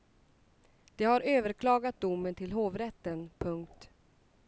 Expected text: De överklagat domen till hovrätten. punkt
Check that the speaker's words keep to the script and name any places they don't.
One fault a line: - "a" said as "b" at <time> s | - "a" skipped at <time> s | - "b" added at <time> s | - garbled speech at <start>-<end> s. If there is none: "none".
- "har" added at 1.1 s